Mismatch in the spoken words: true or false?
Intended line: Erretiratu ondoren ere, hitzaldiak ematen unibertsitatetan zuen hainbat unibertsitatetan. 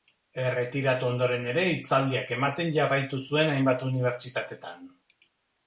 true